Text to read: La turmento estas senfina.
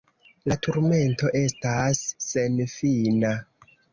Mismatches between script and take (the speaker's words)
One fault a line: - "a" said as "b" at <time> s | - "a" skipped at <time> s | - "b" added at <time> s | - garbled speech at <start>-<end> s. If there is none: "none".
none